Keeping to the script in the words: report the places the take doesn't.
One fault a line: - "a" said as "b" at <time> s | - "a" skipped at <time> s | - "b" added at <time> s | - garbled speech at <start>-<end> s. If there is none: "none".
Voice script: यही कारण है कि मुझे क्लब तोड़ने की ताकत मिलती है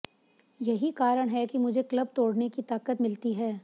none